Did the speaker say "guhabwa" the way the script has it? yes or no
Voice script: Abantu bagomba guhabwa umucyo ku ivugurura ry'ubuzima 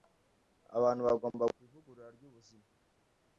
no